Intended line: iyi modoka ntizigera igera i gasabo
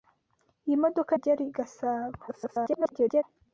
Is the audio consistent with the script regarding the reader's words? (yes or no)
no